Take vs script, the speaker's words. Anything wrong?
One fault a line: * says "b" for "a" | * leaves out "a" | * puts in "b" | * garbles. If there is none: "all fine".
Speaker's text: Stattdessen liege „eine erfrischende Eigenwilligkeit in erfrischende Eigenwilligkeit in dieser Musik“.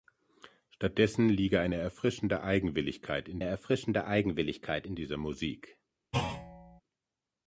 all fine